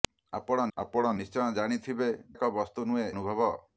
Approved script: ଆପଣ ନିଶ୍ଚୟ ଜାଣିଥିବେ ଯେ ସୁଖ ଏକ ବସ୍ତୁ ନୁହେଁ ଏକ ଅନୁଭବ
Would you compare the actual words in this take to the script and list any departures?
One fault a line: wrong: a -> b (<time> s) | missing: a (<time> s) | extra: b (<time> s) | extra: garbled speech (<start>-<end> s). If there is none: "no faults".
extra: ଆପଣ (0.8 s)
missing: ଯେ ସୁଖ (2.1 s)
missing: ଏକ (3.1 s)